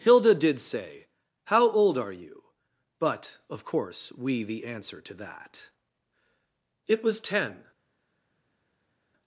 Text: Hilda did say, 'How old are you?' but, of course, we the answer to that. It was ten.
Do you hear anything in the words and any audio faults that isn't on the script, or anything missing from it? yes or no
no